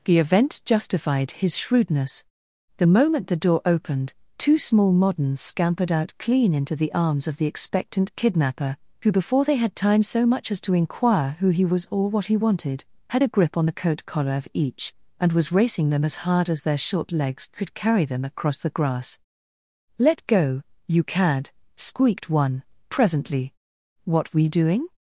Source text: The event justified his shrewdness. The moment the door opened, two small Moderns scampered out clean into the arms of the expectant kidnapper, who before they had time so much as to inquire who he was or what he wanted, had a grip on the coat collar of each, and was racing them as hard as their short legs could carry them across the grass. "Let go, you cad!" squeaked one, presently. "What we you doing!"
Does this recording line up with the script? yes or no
no